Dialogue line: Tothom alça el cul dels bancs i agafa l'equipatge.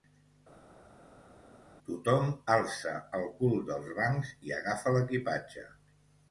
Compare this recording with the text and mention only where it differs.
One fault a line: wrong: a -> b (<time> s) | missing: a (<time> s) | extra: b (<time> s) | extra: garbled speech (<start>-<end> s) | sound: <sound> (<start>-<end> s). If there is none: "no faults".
no faults